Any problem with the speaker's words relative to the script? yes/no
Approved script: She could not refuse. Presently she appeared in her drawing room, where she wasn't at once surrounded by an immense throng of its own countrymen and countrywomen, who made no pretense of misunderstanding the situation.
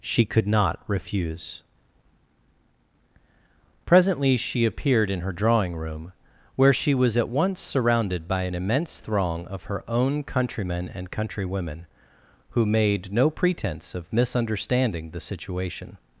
yes